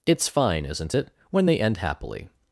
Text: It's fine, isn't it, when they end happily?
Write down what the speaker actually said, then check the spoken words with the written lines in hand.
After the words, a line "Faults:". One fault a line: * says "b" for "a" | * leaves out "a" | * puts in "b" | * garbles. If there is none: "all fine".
It's fine, isn't it, when they end happily?
Faults:
all fine